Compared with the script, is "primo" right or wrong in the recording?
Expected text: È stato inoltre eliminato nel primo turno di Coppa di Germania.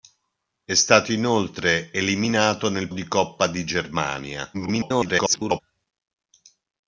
wrong